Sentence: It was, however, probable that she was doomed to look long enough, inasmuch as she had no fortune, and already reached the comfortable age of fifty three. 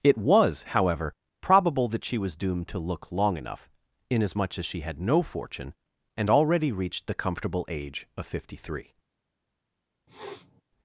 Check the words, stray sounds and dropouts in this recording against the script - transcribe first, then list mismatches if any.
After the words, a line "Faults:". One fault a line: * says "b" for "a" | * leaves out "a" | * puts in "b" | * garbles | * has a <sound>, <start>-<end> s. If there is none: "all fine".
It was, however, probable that she was doomed to look long enough, inasmuch as she had no fortune, and already reached the comfortable age of fifty three.
Faults:
* has a sniff, 10.1-10.6 s